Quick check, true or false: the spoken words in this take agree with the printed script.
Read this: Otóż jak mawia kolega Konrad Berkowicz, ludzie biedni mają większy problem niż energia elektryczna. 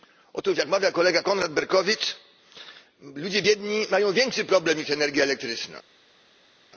true